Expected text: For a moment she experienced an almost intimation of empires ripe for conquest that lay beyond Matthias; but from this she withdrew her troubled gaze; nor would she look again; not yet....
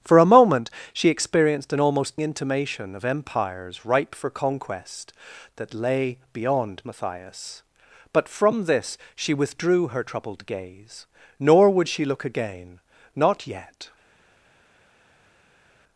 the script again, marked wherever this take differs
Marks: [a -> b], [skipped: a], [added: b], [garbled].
For a moment she experienced an almost intimation of empires ripe for conquest that lay beyond Matthias; but from this she withdrew her troubled gaze; nor would she look again; not yet....